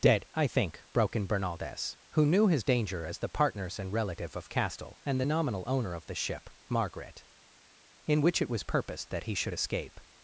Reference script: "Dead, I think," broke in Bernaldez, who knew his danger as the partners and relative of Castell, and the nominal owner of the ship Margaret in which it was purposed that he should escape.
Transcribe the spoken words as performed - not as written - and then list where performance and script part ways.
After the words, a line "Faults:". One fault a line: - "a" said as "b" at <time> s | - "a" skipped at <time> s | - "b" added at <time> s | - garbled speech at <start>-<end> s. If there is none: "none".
"Dead, I think," broke in Bernaldez, who knew his danger as the partners and relative of Castell, and the nominal owner of the ship Margaret in which it was purposed that he should escape.
Faults:
none